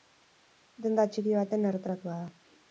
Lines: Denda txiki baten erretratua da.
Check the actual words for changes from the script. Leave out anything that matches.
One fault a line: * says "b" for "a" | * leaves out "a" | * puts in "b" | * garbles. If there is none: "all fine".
all fine